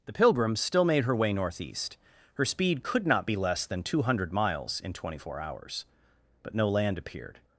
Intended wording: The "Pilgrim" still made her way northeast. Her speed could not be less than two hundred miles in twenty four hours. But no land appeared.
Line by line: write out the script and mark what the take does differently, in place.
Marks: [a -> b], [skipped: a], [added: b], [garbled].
The "Pilgrim" still made her way northeast. Her speed could not be less than two hundred miles in twenty four hours. But no land appeared.